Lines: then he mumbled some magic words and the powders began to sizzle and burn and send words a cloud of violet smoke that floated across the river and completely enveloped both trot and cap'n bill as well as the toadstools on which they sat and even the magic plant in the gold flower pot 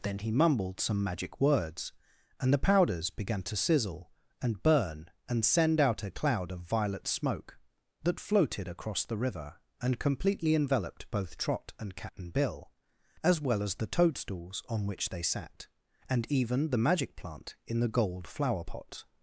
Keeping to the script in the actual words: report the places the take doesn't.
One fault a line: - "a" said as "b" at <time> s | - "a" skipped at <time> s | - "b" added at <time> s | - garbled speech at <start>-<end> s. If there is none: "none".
- "words" said as "out" at 5.8 s